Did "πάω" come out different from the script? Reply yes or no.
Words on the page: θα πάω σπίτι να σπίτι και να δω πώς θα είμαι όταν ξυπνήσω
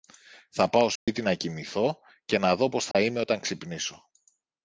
no